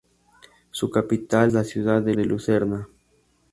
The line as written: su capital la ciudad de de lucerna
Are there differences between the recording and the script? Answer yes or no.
no